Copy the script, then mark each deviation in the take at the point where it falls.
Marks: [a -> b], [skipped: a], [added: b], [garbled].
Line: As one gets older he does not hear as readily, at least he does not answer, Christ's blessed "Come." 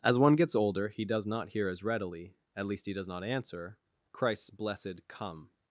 As one gets older he does not hear as readily, at least he does not answer, Christ's blessed "Come."